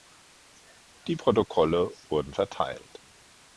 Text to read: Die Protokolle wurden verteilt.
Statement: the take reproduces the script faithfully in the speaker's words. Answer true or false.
true